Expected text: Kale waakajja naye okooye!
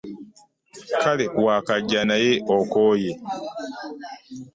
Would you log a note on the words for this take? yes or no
no